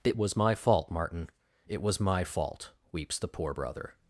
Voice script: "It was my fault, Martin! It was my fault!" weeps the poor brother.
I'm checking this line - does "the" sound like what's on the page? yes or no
yes